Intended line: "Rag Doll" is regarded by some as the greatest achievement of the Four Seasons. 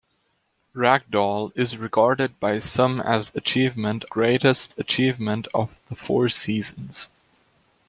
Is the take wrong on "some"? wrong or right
right